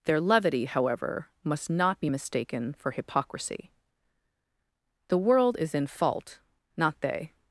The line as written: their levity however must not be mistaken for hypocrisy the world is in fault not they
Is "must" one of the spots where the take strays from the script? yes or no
no